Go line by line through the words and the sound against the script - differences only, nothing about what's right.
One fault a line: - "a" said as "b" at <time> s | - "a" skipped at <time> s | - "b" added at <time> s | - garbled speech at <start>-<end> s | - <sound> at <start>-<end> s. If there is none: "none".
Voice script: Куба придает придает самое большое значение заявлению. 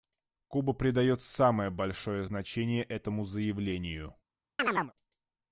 - "придает" skipped at 1.2 s
- "этому" added at 2.8 s
- chirp at 4.6-4.9 s